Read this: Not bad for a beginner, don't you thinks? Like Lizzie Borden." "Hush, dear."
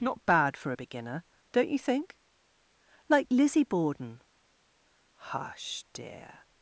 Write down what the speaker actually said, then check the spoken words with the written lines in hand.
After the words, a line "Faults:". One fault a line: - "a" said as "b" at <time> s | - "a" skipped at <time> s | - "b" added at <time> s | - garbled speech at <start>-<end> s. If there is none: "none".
Not bad for a beginner, don't you think? Like Lizzie Borden." "Hush, dear."
Faults:
- "thinks" said as "think" at 1.8 s